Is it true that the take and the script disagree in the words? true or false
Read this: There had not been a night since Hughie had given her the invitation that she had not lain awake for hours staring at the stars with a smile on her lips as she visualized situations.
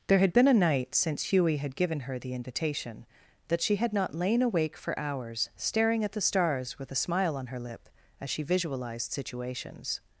true